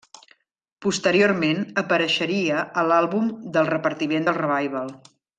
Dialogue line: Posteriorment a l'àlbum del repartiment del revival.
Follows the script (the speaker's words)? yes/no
no